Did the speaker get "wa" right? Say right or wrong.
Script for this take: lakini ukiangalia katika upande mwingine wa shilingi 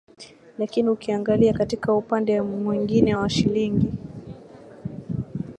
right